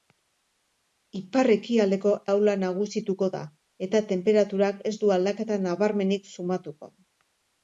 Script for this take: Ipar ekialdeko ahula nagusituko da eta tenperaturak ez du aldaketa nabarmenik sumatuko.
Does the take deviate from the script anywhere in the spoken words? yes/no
no